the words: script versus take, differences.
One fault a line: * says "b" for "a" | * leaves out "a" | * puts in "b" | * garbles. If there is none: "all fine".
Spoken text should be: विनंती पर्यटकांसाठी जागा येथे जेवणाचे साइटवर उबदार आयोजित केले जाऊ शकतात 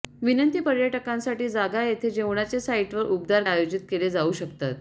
all fine